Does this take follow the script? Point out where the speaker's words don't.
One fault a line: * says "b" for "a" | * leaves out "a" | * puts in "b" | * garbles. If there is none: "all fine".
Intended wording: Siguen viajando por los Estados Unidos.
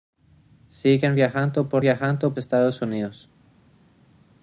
* says "viajando" for "los"